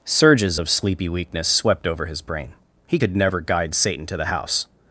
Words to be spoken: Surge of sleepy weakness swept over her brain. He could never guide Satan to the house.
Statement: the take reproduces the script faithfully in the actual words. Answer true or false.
false